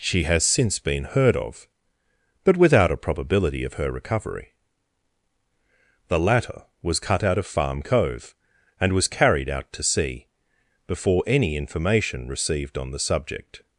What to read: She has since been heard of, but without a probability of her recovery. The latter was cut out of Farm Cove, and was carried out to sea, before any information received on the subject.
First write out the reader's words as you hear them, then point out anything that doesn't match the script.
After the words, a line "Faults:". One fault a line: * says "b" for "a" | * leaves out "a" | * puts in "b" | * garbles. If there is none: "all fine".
She has since been heard of, but without a probability of her recovery. The latter was cut out of Farm Cove, and was carried out to sea, before any information received on the subject.
Faults:
all fine